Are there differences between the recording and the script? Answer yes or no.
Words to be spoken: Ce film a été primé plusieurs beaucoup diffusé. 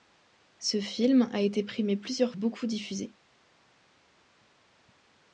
no